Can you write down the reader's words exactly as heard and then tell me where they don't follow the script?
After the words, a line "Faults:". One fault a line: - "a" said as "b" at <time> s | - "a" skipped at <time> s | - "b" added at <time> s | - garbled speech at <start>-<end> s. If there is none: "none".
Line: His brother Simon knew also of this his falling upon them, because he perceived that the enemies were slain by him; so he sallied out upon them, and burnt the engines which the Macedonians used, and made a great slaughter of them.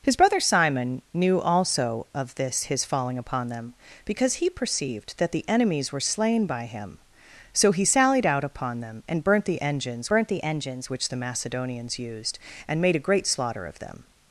His brother Simon knew also of this his falling upon them, because he perceived that the enemies were slain by him; so he sallied out upon them, and burnt the engines burnt the engines which the Macedonians used, and made a great slaughter of them.
Faults:
- "burnt the engines" added at 10.1 s